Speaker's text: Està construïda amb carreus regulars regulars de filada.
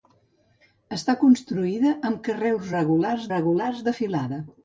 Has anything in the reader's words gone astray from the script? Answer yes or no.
no